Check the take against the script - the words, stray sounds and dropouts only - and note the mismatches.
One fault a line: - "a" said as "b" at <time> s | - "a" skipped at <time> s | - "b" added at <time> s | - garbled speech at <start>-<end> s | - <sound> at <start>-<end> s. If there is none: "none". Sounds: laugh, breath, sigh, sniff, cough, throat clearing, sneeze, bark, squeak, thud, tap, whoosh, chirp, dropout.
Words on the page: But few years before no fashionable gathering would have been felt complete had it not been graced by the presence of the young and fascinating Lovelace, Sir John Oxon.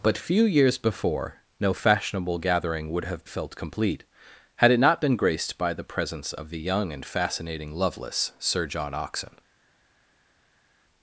- "been" skipped at 3.2 s